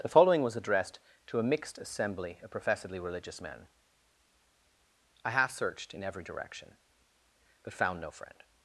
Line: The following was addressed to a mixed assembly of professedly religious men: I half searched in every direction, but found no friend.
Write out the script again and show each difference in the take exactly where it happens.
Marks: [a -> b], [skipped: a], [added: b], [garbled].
The following was addressed to a mixed assembly of professedly religious men: I half searched in every direction, but found no friend.